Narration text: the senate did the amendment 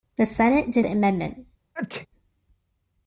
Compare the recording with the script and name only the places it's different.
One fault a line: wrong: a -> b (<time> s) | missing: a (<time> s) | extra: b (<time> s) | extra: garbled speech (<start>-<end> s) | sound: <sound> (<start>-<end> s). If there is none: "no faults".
sound: sneeze (1.7-2.1 s)